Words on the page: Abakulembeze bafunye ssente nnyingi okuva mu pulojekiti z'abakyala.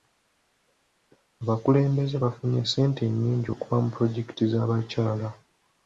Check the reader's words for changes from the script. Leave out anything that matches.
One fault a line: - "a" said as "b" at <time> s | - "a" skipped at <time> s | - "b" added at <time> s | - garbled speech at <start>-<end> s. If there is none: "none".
none